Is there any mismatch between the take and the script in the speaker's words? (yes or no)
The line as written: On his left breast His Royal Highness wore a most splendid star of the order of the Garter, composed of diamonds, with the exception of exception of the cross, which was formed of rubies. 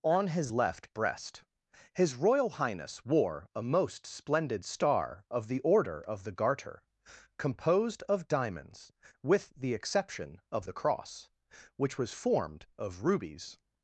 yes